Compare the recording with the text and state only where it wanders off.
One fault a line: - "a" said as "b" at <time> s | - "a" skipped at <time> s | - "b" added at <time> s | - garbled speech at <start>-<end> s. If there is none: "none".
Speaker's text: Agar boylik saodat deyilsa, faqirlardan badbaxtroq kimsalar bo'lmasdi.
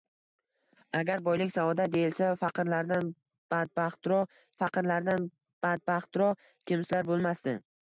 - "faqirlardan badbaxtroq" added at 4.6 s